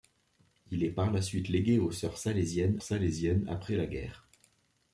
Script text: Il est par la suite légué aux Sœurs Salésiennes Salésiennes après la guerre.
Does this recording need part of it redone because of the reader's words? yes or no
no